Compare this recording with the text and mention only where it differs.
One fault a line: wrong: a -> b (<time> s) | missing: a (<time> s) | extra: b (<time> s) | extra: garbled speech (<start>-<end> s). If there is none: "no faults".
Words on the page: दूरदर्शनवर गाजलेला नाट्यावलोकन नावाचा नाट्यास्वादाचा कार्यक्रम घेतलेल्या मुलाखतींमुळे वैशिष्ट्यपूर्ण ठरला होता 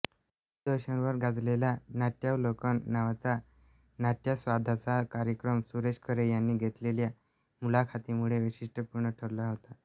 extra: सुरेश खरे यांनी (5.7 s)